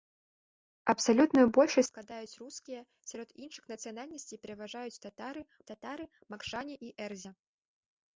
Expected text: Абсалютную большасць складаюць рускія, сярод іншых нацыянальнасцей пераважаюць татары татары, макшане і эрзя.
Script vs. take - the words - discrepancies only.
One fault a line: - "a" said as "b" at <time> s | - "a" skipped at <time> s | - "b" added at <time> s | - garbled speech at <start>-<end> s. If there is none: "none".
none